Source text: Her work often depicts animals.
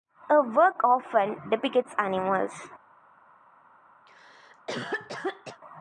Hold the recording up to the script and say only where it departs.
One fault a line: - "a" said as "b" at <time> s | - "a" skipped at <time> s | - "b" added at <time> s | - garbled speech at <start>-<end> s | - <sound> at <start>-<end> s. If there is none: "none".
- cough at 4.1-5.6 s